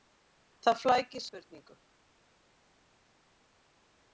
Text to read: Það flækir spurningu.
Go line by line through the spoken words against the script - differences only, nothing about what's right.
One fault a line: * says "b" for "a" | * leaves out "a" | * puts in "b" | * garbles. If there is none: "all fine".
all fine